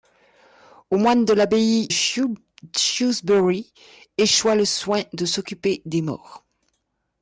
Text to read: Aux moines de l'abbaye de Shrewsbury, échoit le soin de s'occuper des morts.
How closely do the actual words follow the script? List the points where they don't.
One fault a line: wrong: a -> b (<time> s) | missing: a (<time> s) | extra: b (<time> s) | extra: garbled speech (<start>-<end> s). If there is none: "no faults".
missing: de (1.9 s)